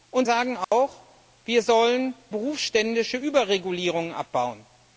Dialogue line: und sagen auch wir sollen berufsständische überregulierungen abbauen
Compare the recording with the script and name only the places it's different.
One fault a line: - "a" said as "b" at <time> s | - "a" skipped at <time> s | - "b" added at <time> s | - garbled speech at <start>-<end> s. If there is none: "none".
none